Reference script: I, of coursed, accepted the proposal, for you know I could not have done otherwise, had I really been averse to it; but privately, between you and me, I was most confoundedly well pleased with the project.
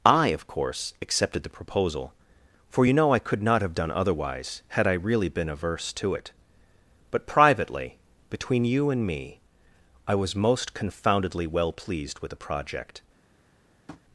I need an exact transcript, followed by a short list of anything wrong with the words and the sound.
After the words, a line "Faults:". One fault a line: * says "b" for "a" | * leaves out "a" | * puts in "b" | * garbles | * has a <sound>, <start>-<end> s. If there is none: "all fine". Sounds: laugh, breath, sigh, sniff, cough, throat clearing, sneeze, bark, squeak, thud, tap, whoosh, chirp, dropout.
I, of course, accepted the proposal, for you know I could not have done otherwise, had I really been averse to it; but privately, between you and me, I was most confoundedly well pleased with the project.
Faults:
* says "course" for "coursed"
* has a tap, 13.9-14.0 s